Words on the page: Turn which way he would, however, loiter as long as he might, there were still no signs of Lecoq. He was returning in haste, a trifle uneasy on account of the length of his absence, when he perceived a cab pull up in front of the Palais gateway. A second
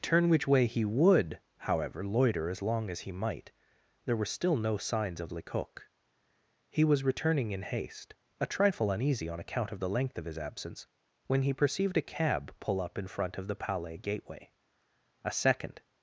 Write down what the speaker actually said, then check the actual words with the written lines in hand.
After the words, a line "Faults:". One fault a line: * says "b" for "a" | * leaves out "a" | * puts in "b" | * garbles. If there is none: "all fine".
Turn which way he would, however, loiter as long as he might, there were still no signs of Lecoq. He was returning in haste, a trifle uneasy on account of the length of his absence, when he perceived a cab pull up in front of the Palais gateway. A second
Faults:
all fine